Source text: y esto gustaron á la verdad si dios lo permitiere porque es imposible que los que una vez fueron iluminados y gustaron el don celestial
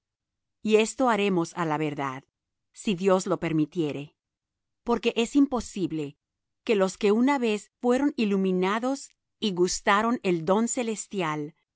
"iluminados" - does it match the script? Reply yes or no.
yes